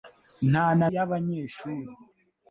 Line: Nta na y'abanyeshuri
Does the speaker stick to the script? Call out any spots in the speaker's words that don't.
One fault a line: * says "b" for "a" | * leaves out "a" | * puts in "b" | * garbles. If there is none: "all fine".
all fine